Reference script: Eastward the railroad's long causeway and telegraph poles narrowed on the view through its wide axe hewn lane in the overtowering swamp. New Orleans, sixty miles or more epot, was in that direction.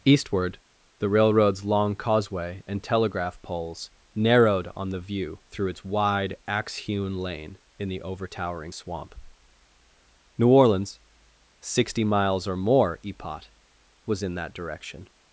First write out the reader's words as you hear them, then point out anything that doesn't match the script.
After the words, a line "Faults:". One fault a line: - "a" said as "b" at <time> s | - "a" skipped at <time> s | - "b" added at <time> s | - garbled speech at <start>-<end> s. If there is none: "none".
Eastward the railroad's long causeway and telegraph poles narrowed on the view through its wide axe hewn lane in the overtowering swamp. New Orleans, sixty miles or more epot, was in that direction.
Faults:
none